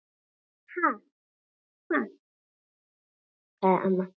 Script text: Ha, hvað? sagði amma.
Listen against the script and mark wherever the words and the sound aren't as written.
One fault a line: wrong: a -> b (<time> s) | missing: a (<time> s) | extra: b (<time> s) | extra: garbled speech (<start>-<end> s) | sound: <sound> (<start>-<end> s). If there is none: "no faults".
no faults